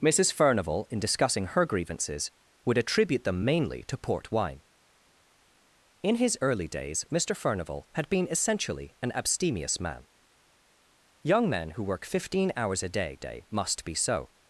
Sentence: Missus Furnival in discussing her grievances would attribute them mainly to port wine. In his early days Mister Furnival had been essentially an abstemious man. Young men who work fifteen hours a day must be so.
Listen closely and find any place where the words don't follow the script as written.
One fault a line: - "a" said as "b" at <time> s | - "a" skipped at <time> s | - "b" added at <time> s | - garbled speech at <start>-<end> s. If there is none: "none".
- "day" added at 13.2 s